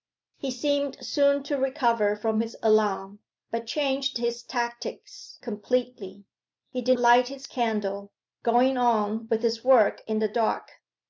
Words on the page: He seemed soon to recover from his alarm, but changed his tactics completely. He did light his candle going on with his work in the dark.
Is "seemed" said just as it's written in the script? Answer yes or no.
yes